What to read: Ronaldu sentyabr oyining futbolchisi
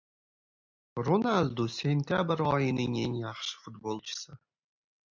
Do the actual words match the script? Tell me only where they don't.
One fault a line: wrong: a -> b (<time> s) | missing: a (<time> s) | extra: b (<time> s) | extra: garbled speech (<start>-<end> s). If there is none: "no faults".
extra: eng yaxshi (3.0 s)